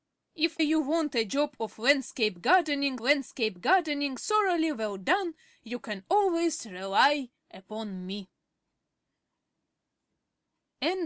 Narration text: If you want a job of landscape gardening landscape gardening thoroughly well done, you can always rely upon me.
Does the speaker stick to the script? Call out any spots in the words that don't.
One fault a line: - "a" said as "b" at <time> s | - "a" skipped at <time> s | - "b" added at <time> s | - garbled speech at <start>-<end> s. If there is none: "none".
none